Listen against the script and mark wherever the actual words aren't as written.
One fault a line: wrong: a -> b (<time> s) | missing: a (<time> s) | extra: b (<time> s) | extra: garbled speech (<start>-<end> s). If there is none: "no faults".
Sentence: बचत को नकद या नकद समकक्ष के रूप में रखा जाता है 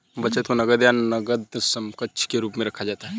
no faults